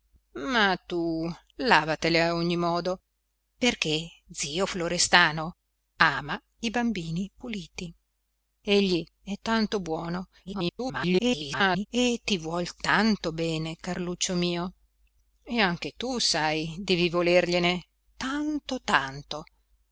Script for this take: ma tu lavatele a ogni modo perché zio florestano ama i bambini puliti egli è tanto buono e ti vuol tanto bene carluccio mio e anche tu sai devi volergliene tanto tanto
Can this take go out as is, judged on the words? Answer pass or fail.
fail